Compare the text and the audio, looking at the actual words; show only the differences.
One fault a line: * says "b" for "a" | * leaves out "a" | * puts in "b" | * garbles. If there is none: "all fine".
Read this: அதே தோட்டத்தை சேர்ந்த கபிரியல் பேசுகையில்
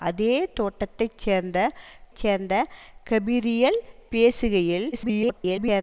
* puts in "சேர்ந்த"
* garbles